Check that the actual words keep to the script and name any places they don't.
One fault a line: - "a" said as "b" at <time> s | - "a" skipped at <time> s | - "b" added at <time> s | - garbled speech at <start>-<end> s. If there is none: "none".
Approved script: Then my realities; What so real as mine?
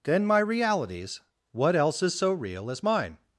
- "else is" added at 1.8 s